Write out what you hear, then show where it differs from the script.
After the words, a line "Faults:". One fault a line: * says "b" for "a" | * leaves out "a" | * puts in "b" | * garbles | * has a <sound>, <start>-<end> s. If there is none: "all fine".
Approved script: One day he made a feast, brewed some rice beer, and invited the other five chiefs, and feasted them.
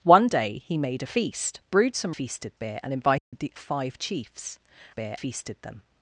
One day he made a feast, brewed some feasted beer, and invited the five chiefs, beer feasted them.
Faults:
* says "feasted" for "rice"
* has a dropout, 3.2-3.3 s
* leaves out "other"
* says "beer" for "and"